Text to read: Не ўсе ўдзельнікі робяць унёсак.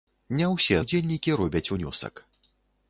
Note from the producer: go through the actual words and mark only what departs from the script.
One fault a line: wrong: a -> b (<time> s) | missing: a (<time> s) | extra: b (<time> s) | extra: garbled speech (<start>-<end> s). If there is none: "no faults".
no faults